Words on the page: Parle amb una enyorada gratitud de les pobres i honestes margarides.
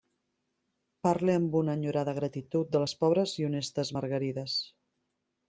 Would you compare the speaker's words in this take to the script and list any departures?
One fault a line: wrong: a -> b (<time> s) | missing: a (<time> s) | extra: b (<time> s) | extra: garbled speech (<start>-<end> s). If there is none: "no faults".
no faults